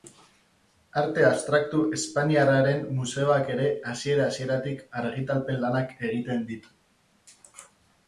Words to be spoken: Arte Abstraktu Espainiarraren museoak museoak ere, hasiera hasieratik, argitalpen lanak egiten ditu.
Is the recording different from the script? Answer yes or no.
yes